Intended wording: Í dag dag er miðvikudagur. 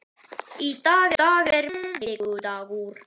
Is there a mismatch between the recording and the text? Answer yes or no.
no